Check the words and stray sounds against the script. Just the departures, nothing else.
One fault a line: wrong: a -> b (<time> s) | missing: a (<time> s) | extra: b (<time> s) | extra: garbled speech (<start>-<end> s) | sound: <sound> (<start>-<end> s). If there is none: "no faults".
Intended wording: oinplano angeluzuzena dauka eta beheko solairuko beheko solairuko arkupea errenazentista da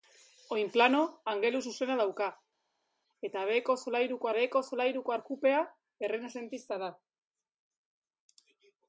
no faults